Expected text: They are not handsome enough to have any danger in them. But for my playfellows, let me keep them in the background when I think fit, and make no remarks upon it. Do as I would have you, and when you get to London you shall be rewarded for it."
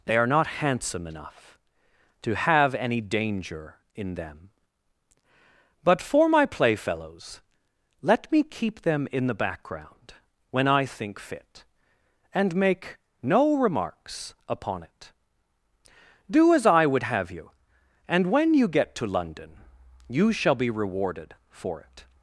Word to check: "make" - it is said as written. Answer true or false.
true